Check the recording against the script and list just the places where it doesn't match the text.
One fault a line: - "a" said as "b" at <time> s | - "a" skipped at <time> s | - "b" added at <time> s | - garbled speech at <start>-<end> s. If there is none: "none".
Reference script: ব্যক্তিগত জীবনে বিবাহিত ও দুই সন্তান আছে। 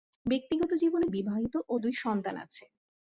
none